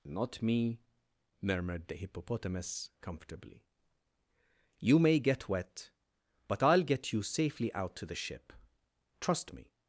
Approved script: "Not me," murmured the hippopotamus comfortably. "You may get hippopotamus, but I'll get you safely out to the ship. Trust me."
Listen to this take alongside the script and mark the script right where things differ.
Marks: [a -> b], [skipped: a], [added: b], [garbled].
"Not me," murmured the hippopotamus comfortably. "You may get [hippopotamus, -> wet] but I'll get you safely out to the ship. Trust me."